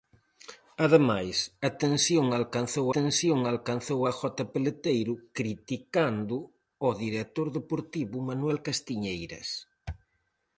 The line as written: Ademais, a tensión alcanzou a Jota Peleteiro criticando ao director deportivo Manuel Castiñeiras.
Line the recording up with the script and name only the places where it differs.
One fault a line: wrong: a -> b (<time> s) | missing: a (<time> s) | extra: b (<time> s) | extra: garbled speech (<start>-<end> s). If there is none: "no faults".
extra: tensión alcanzou (2.9 s)